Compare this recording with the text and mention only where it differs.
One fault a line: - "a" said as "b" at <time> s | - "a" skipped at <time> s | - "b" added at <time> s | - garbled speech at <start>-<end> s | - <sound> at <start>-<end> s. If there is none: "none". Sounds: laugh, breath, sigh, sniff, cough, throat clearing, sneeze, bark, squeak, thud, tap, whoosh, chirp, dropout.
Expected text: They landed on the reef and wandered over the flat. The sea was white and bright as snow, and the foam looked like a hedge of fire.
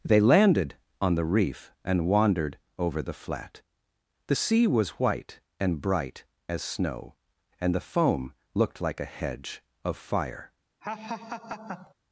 - laugh at 10.8-11.9 s